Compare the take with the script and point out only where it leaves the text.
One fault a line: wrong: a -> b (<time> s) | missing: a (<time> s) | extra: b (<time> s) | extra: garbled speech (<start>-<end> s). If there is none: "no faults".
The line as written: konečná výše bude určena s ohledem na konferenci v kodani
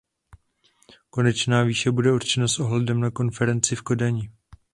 no faults